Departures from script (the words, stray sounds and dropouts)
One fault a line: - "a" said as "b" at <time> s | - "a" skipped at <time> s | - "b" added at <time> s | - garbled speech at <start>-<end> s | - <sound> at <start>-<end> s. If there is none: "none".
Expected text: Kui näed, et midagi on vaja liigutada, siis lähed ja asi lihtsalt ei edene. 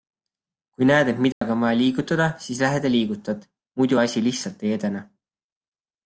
- dropout at 1.3-1.4 s
- "liigutad muidu" added at 2.9 s